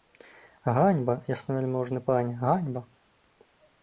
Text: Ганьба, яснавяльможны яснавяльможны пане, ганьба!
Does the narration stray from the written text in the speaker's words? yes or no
yes